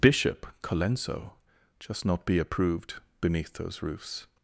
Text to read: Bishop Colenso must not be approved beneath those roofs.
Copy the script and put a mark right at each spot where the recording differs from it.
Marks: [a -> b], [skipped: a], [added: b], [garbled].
Bishop Colenso [must -> just] not be approved beneath those roofs.